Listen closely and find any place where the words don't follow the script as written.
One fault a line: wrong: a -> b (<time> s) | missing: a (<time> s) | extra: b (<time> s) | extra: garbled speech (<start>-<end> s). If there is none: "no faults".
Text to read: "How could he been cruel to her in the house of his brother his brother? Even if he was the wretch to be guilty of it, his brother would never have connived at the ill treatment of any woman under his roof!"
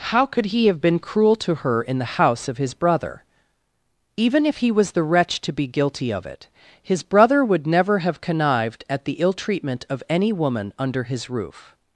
extra: have (0.7 s)
missing: his brother (3.2 s)